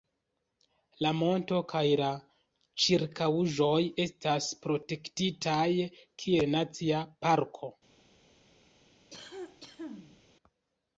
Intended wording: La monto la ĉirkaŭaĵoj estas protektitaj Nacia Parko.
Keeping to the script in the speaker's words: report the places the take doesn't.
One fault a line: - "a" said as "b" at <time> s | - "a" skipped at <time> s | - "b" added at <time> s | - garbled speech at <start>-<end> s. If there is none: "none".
- "kaj" added at 1.7 s
- "kiel" added at 6.2 s